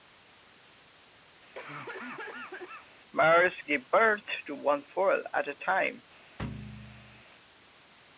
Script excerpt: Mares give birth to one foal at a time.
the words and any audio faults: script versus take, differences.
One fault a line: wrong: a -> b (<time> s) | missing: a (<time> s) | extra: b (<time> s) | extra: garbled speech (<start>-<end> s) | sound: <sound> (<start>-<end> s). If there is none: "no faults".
sound: cough (1.5-2.9 s)
sound: thud (6.4-7.2 s)